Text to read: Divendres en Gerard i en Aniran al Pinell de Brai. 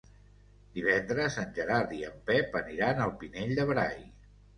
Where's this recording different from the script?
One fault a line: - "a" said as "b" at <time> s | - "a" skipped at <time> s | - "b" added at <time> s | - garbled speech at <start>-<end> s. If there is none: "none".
- "Pep" added at 2.3 s